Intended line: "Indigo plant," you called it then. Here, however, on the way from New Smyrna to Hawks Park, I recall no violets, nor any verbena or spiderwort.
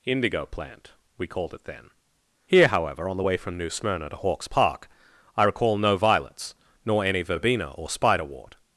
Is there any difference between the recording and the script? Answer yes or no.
yes